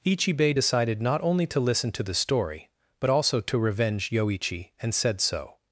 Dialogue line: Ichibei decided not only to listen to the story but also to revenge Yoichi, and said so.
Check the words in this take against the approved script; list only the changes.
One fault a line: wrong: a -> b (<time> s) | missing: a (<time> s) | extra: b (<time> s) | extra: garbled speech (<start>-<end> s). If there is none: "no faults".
no faults